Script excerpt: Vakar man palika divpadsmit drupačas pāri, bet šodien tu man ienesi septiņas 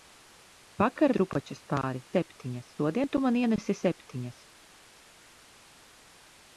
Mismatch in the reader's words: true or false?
true